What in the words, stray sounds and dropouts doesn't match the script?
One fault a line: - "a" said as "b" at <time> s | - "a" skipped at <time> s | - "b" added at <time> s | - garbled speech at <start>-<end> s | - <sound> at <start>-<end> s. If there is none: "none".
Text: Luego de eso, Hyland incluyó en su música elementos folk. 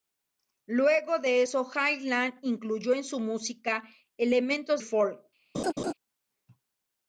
- laugh at 5.5-5.9 s